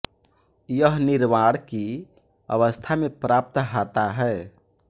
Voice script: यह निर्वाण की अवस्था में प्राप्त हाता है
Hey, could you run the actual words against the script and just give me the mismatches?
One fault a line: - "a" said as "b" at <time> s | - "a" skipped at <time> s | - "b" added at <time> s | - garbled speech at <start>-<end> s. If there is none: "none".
none